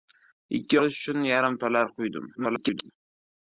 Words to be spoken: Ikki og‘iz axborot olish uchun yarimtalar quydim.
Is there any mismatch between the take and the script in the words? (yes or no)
yes